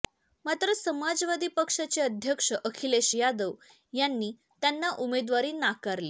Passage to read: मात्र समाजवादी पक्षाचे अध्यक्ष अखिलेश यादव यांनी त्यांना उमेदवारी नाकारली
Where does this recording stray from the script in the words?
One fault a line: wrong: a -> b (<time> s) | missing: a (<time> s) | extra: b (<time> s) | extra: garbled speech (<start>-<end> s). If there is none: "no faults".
no faults